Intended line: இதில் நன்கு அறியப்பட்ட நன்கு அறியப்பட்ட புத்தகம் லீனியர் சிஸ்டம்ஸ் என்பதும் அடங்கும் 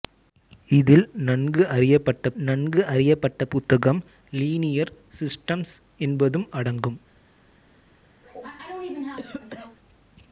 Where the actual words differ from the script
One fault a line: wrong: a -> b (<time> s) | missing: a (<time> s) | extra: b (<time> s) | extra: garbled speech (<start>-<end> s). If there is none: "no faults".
no faults